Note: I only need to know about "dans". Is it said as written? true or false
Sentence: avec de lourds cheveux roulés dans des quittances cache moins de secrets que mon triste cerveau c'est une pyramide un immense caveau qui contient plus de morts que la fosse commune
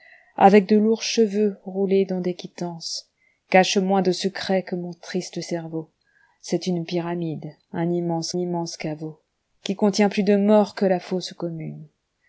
true